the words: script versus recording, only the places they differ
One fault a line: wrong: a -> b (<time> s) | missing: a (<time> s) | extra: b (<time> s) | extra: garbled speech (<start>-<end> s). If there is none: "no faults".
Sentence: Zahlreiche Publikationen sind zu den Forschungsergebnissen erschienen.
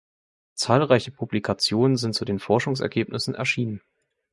no faults